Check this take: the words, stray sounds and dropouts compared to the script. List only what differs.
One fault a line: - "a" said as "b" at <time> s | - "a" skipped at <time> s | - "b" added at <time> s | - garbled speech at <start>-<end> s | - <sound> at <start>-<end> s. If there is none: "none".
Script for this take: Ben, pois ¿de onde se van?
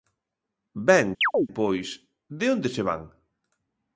- chirp at 1.2-1.5 s